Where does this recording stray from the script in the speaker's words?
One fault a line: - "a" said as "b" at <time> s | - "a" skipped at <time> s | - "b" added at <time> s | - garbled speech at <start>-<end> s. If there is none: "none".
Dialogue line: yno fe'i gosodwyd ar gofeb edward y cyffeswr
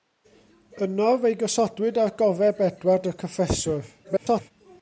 - garbled speech at 4.0-4.5 s